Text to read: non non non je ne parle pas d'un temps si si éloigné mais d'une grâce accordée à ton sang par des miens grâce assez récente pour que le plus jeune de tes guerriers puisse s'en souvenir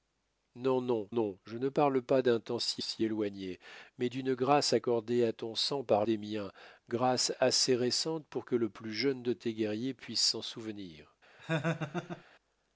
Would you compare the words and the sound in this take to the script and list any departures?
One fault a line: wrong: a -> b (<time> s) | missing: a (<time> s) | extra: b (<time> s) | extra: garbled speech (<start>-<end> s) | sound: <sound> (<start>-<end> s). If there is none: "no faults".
sound: laugh (11.4-12.2 s)